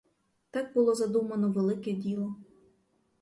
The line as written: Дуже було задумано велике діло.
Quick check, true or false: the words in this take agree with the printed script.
false